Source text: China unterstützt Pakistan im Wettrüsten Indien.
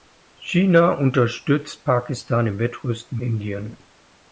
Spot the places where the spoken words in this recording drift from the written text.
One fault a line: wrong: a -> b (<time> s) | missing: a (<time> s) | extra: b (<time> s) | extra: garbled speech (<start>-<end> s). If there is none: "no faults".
no faults